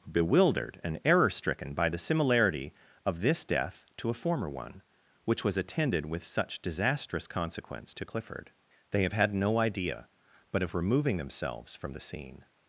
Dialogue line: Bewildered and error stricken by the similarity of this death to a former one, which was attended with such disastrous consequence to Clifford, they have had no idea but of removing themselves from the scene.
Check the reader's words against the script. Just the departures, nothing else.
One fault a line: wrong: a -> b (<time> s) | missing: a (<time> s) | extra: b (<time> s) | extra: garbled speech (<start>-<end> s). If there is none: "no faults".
no faults